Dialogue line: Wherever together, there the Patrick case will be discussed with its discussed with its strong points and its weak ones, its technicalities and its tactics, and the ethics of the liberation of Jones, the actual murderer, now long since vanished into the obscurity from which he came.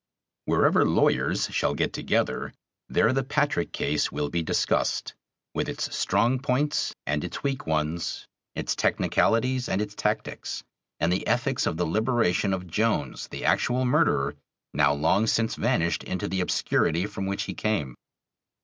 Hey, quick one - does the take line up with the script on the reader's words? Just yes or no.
no